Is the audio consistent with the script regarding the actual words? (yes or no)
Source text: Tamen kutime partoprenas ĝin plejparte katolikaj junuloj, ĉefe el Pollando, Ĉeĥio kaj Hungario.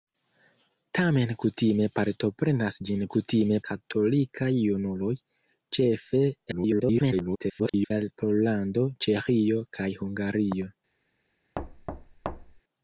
no